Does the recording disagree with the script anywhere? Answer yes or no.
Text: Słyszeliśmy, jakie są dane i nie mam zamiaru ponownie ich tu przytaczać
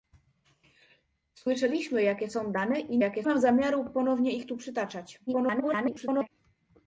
yes